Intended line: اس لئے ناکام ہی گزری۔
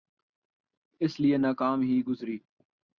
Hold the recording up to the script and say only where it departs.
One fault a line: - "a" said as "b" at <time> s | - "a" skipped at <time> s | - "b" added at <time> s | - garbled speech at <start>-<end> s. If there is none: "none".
none